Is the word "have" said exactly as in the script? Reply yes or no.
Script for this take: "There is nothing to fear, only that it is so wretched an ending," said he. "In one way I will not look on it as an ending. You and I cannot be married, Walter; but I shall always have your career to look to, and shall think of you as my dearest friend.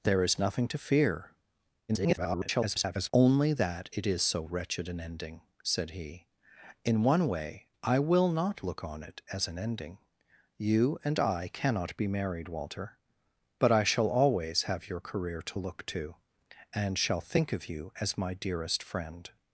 yes